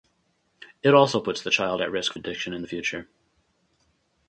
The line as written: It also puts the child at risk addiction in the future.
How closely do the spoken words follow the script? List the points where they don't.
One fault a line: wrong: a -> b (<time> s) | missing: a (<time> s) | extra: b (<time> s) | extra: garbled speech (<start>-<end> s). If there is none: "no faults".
no faults